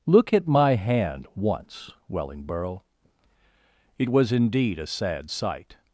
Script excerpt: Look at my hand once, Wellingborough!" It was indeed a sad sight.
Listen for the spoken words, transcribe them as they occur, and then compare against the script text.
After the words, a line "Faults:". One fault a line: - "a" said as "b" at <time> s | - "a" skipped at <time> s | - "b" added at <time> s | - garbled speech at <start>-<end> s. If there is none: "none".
Look at my hand once, Wellingborough!" It was indeed a sad sight.
Faults:
none